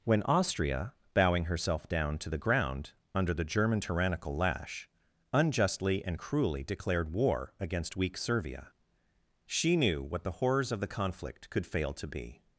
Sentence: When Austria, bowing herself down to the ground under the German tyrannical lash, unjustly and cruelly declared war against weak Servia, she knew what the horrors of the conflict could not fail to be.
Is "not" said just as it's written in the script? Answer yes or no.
no